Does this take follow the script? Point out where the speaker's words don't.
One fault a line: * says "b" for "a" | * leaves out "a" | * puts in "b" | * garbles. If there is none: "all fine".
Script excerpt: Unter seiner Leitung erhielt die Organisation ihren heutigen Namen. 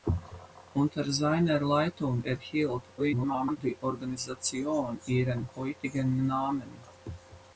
* garbles